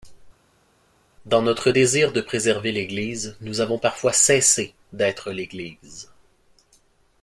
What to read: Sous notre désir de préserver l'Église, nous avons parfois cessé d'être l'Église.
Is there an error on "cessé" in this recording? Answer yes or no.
no